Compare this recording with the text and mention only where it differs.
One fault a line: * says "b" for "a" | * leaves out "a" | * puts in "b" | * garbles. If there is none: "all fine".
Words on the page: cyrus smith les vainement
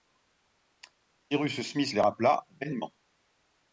* puts in "rappela"